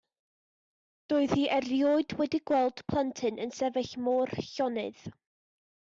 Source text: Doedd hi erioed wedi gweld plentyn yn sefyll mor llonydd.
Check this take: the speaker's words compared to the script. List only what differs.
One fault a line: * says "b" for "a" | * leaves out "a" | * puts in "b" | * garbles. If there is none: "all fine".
all fine